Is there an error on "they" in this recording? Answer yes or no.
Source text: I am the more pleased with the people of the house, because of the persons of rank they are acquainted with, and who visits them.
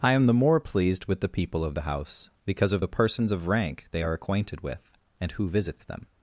no